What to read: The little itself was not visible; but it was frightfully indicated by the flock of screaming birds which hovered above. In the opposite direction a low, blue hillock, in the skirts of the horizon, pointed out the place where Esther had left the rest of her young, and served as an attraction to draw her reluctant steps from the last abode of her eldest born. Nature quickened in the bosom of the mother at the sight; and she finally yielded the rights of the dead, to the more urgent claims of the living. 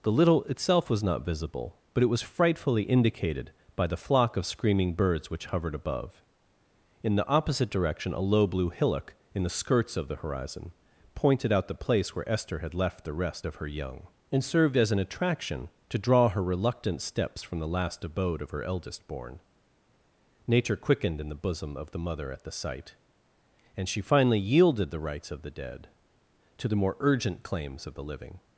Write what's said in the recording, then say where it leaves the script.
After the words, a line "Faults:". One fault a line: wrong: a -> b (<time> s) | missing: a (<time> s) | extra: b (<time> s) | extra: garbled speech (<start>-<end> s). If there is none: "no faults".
The little itself was not visible; but it was frightfully indicated by the flock of screaming birds which hovered above. In the opposite direction a low, blue hillock, in the skirts of the horizon, pointed out the place where Esther had left the rest of her young, and served as an attraction to draw her reluctant steps from the last abode of her eldest born. Nature quickened in the bosom of the mother at the sight; and she finally yielded the rights of the dead, to the more urgent claims of the living.
Faults:
no faults